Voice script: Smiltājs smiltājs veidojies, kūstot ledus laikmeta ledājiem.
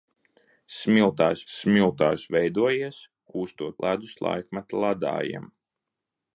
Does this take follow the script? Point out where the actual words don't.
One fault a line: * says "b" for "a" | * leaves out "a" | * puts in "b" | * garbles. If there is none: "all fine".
all fine